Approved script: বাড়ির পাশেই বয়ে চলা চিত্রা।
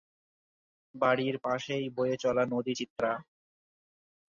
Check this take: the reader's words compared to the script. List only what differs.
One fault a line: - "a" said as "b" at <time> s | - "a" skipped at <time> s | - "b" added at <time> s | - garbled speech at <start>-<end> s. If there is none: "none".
- "নদী" added at 2.5 s